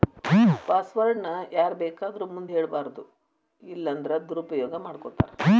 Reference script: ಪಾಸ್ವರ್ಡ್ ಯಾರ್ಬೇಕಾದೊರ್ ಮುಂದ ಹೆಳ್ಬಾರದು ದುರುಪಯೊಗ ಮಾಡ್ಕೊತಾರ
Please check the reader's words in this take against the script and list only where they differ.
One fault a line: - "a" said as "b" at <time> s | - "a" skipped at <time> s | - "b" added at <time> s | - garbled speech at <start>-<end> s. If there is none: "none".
- "ನ" added at 1.2 s
- "ಇಲ್ಲನ್ದ್ರ" added at 3.6 s